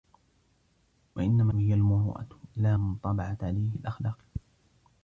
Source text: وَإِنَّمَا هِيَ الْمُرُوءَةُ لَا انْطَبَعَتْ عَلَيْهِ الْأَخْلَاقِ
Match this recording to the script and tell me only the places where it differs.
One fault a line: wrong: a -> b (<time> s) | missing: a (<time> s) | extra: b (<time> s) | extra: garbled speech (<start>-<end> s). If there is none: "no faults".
no faults